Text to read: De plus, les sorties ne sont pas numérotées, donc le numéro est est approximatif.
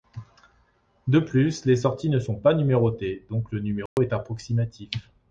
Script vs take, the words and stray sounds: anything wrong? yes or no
yes